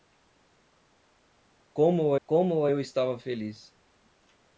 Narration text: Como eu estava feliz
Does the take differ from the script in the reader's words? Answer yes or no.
yes